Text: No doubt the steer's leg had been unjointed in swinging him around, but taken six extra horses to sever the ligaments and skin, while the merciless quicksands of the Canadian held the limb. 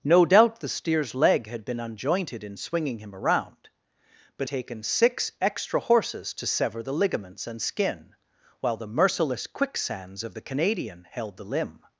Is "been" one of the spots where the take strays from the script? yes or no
no